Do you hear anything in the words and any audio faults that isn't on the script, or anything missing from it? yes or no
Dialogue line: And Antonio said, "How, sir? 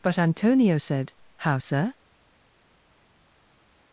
yes